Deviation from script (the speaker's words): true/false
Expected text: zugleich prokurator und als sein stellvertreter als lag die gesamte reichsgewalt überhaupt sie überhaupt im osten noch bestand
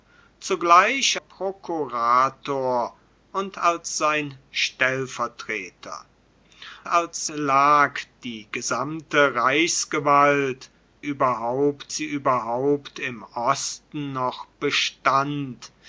false